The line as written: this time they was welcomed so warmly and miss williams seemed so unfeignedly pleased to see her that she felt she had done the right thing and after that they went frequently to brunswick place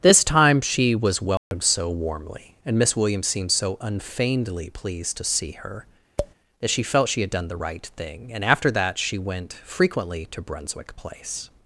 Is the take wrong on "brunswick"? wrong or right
right